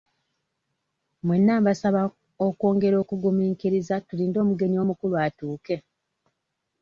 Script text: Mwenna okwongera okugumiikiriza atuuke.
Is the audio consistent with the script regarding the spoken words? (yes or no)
no